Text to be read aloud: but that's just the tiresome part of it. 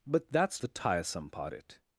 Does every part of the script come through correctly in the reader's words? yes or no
no